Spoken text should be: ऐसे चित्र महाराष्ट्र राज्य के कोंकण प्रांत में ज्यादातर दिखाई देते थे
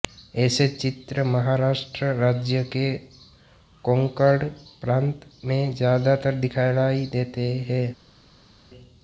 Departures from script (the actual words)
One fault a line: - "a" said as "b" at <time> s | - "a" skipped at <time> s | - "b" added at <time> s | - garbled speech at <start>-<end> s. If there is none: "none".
- "थे" said as "हैं" at 7.7 s